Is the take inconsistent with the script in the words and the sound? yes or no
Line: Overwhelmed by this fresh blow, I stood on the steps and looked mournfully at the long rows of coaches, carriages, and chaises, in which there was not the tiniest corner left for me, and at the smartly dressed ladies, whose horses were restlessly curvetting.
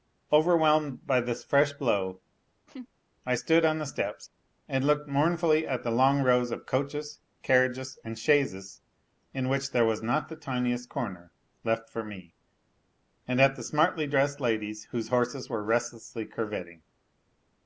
yes